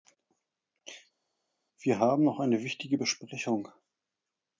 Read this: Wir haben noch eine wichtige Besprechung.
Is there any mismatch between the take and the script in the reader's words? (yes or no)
no